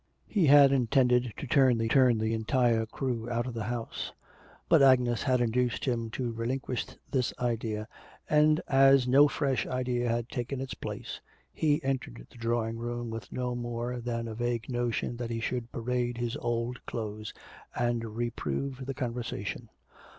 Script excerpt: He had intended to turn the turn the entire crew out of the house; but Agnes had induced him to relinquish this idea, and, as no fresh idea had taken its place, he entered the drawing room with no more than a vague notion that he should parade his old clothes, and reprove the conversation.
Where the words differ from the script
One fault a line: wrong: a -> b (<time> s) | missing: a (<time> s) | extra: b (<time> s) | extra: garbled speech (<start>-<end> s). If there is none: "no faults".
no faults